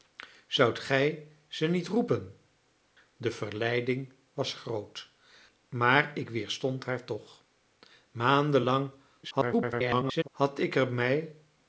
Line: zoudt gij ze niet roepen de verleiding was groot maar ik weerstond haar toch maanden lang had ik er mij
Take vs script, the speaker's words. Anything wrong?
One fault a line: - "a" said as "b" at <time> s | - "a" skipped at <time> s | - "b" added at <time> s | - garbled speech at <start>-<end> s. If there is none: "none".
- garbled speech at 9.2-10.3 s